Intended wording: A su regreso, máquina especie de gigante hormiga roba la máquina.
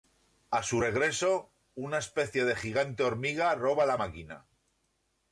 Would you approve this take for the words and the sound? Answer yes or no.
no